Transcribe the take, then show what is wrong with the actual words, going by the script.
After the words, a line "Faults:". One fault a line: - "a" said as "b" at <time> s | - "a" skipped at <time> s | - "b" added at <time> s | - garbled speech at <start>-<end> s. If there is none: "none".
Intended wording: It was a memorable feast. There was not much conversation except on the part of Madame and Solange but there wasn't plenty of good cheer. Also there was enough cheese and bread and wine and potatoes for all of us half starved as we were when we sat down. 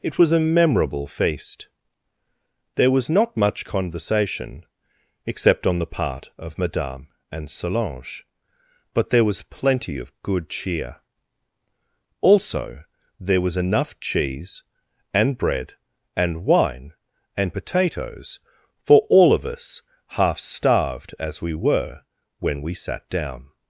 It was a memorable feast. There was not much conversation except on the part of Madame and Solange but there was plenty of good cheer. Also there was enough cheese and bread and wine and potatoes for all of us half starved as we were when we sat down.
Faults:
- "wasn't" said as "was" at 9.2 s